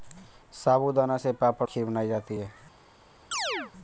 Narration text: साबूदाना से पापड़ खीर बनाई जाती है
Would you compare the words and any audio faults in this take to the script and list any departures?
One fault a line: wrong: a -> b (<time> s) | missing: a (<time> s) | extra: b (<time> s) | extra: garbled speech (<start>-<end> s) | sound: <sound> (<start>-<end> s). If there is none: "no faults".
sound: chirp (3.3-3.7 s)